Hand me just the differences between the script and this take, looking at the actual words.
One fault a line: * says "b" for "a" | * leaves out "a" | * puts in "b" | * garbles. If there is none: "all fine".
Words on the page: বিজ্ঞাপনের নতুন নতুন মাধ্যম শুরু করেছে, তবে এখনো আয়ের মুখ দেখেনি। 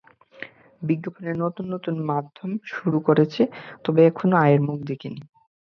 all fine